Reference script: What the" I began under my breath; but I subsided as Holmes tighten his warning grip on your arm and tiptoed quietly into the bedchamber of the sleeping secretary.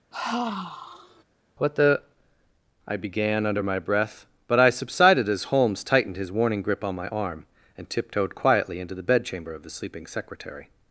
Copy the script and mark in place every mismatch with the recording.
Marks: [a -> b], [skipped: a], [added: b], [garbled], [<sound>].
[sigh] What the" I began under my breath; but I subsided as Holmes [tighten -> tightened] his warning grip on [your -> my] arm and tiptoed quietly into the bedchamber of the sleeping secretary.